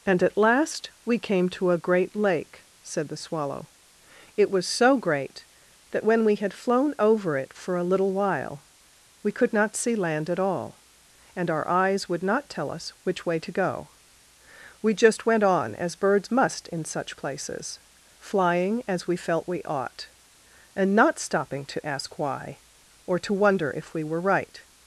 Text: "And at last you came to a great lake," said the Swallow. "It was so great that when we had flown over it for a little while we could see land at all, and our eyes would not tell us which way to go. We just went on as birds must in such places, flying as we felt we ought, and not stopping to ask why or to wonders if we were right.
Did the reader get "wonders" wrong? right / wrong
wrong